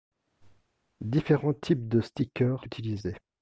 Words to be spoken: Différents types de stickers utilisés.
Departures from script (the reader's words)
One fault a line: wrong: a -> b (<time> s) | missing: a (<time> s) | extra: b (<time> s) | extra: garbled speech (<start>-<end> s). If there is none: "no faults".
no faults